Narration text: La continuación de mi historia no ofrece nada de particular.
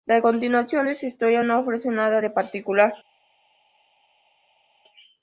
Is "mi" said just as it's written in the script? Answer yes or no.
no